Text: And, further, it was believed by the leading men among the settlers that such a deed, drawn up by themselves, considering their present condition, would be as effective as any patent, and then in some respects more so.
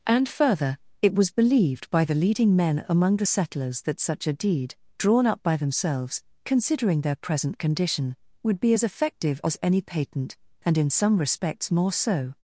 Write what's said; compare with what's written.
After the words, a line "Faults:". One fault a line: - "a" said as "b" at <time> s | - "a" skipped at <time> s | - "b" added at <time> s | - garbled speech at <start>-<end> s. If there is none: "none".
And, further, it was believed by the leading men among the settlers that such a deed, drawn up by themselves, considering their present condition, would be as effective as any patent, and in some respects more so.
Faults:
- "then" skipped at 10.8 s